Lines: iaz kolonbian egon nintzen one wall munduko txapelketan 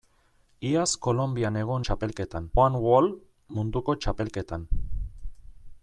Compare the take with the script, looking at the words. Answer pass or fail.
fail